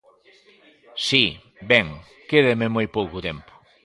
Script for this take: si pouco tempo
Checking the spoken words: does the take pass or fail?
fail